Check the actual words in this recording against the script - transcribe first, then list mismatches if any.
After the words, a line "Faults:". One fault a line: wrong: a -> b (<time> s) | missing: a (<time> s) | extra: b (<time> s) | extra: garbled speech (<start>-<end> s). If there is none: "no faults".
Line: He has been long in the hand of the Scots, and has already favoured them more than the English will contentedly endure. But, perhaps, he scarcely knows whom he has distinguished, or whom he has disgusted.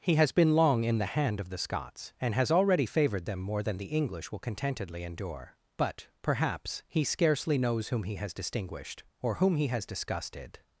He has been long in the hand of the Scots, and has already favoured them more than the English will contentedly endure. But, perhaps, he scarcely knows whom he has distinguished, or whom he has disgusted.
Faults:
no faults